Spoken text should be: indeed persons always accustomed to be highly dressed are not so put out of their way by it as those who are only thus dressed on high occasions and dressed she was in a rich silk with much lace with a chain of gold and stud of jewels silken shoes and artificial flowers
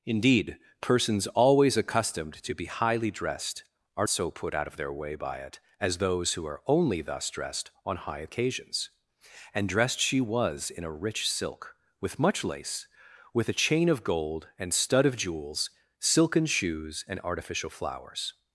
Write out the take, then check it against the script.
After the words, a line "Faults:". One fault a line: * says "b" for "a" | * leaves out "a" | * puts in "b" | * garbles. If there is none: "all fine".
indeed persons always accustomed to be highly dressed are so put out of their way by it as those who are only thus dressed on high occasions and dressed she was in a rich silk with much lace with a chain of gold and stud of jewels silken shoes and artificial flowers
Faults:
* leaves out "not"